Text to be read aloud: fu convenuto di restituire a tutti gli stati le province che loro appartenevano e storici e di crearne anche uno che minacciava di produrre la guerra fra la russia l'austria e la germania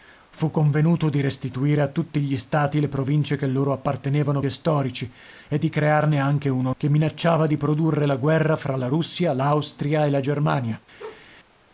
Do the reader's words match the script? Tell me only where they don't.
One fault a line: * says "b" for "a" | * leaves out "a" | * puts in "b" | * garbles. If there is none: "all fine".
all fine